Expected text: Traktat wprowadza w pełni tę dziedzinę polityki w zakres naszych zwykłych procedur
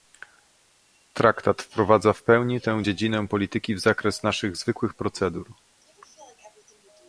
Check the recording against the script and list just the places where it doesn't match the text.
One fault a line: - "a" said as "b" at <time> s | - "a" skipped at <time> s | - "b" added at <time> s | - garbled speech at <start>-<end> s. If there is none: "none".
none